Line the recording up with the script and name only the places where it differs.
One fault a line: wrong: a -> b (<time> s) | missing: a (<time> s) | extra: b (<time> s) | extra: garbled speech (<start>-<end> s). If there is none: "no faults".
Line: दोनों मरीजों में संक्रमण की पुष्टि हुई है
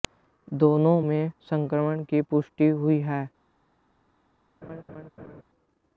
missing: मरीजों (1.0 s)